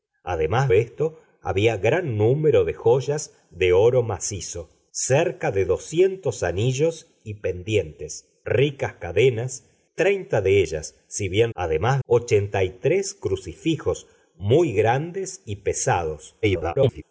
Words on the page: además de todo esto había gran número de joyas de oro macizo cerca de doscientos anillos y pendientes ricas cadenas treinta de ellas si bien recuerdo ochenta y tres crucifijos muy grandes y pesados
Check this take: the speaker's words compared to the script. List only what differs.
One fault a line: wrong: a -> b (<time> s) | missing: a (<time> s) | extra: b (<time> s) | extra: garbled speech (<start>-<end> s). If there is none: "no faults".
missing: de todo (0.7 s)
wrong: recuerdo -> además (11.5 s)
extra: garbled speech (16.4-17.0 s)